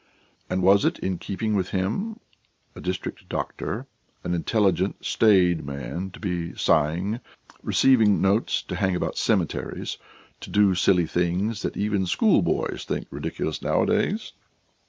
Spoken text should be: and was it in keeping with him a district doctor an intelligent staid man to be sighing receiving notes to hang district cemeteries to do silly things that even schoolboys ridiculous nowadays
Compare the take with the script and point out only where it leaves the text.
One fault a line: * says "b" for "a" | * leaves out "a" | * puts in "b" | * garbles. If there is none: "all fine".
* says "about" for "district"
* puts in "think"